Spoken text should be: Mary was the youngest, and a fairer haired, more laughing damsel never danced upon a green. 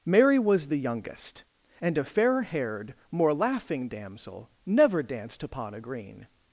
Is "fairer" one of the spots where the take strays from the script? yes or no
yes